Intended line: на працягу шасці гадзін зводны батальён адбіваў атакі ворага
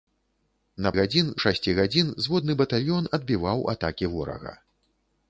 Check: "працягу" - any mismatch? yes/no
yes